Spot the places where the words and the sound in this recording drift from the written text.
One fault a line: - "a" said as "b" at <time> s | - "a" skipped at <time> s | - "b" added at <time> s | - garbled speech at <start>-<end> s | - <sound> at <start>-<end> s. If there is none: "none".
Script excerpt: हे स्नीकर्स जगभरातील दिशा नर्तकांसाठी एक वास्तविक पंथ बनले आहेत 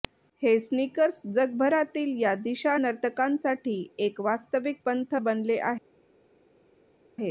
- "या" added at 2.2 s